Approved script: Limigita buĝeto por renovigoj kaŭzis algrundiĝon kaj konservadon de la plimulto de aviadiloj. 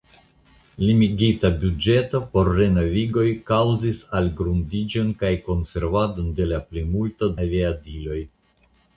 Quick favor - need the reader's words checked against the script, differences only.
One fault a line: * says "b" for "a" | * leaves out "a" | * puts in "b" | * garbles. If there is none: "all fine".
* leaves out "de"